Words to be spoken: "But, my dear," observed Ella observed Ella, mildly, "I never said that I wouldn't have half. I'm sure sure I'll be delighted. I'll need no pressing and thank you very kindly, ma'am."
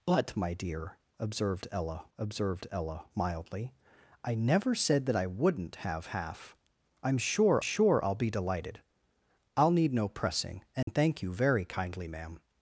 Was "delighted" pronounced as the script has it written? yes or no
yes